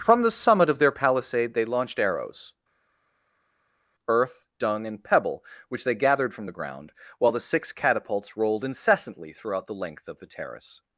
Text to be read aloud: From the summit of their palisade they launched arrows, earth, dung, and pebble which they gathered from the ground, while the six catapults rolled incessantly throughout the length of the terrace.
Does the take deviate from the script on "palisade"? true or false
false